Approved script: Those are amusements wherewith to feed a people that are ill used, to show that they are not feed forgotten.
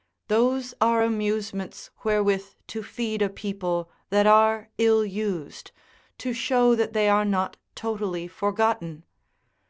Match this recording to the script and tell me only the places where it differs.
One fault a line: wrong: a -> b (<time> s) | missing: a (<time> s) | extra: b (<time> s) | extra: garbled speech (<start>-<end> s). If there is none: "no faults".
wrong: feed -> totally (7.8 s)